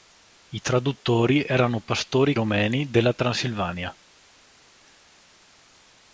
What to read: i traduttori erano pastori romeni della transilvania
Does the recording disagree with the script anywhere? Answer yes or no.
no